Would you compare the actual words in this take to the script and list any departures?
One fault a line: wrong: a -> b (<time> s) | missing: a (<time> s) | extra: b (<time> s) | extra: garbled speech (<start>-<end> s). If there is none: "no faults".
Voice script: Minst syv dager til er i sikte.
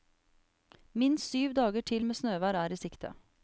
extra: med snøvær (2.0 s)